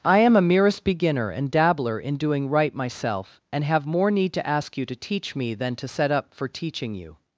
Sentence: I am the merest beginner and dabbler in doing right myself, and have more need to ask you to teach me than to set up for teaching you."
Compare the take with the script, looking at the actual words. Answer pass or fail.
fail